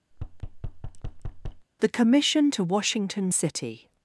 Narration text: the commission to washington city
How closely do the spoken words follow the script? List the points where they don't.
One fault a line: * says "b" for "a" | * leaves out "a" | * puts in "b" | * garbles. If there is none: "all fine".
all fine